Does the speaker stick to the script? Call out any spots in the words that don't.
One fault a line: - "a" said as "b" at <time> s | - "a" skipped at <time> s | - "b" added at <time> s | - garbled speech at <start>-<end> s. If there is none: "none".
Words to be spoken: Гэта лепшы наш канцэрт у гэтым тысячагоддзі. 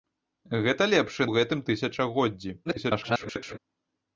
- "наш канцэрт" skipped at 1.3 s
- garbled speech at 2.6-3.6 s